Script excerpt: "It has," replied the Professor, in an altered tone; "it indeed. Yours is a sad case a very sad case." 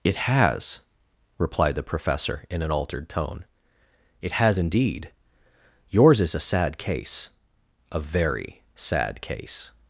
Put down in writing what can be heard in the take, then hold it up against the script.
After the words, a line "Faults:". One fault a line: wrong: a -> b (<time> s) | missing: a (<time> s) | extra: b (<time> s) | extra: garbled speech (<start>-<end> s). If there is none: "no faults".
"It has," replied the Professor, in an altered tone; "it has indeed. Yours is a sad case a very sad case."
Faults:
extra: has (4.3 s)